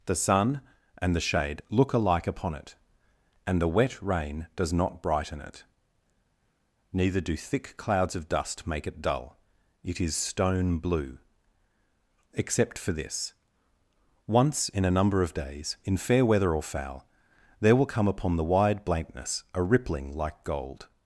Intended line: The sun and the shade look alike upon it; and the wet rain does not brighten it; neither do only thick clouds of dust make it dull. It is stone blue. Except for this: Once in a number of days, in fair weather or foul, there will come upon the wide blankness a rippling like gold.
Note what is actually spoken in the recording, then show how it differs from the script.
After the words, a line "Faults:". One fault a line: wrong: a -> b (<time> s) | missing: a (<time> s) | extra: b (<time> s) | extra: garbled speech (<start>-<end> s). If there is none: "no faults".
The sun and the shade look alike upon it; and the wet rain does not brighten it; neither do thick clouds of dust make it dull. It is stone blue. Except for this: Once in a number of days, in fair weather or foul, there will come upon the wide blankness a rippling like gold.
Faults:
missing: only (7.4 s)